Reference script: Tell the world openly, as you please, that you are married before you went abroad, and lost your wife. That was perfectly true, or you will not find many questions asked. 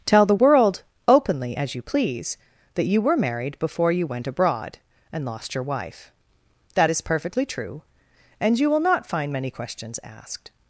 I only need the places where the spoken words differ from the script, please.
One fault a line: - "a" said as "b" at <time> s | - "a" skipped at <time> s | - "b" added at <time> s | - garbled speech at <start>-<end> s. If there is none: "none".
- "are" said as "were" at 3.0 s
- "was" said as "is" at 6.9 s
- "or" said as "and" at 8.4 s